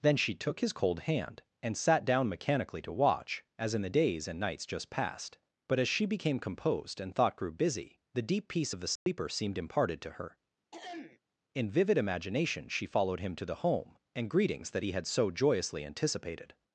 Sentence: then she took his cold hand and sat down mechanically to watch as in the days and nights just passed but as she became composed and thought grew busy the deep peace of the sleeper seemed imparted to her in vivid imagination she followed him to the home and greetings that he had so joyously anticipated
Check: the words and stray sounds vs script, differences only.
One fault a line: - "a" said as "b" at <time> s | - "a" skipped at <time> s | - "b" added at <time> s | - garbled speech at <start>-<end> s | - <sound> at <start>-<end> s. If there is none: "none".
- dropout at 9.0-9.1 s
- throat clearing at 10.7-11.2 s